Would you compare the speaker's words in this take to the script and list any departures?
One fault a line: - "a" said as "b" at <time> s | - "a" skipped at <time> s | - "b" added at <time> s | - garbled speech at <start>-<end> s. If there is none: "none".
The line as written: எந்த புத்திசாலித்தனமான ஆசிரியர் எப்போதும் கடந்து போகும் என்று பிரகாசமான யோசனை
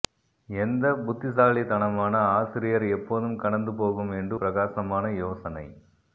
none